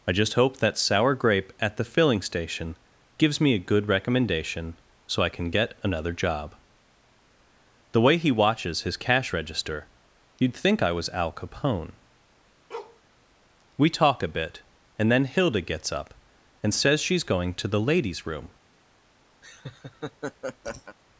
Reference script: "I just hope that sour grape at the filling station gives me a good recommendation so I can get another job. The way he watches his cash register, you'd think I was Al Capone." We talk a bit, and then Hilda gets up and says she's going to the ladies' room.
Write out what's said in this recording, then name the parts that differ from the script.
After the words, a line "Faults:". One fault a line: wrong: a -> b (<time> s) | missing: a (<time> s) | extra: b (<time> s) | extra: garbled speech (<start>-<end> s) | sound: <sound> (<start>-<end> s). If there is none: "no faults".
"I just hope that sour grape at the filling station gives me a good recommendation so I can get another job. The way he watches his cash register, you'd think I was Al Capone." We talk a bit, and then Hilda gets up and says she's going to the ladies' room.
Faults:
sound: bark (12.7-13.0 s)
sound: laugh (19.4-21.0 s)